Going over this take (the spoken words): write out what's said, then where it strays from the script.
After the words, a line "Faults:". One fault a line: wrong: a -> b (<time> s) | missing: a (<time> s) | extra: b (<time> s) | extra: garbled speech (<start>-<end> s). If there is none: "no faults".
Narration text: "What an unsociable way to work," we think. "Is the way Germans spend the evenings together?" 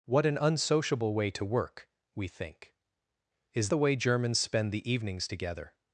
"What an unsociable way to work," we think. "Is the way Germans spend the evenings together?"
Faults:
no faults